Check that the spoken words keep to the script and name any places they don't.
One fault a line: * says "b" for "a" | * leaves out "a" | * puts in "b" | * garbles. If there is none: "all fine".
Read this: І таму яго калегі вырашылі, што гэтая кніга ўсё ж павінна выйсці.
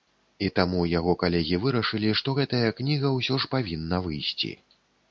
all fine